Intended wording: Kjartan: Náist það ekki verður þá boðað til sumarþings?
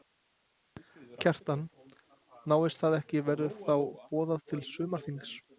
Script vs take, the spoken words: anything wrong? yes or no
no